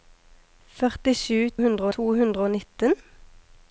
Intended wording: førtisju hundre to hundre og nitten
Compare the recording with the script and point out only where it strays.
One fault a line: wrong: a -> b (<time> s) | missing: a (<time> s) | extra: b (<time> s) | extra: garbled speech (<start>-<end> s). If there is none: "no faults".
no faults